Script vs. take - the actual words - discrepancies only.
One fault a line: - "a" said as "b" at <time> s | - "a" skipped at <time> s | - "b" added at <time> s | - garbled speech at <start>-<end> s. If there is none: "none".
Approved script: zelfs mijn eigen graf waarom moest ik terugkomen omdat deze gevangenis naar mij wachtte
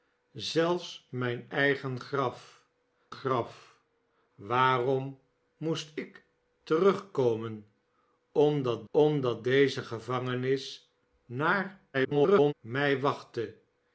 - "graf" added at 3.1 s
- "omdat" added at 8.9 s
- garbled speech at 11.9-12.5 s